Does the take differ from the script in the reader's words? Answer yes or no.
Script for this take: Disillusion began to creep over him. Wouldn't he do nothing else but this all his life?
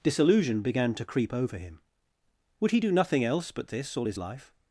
yes